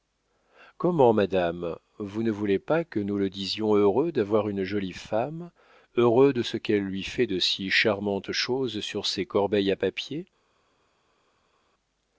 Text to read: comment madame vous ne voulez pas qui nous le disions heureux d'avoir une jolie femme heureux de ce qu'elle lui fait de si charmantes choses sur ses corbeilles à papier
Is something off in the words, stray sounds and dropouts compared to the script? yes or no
yes